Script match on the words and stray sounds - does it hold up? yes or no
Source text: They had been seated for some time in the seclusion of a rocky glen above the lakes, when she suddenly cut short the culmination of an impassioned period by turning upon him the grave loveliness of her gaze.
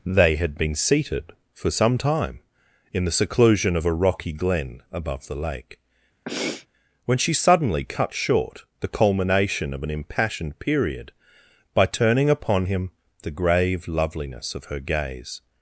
no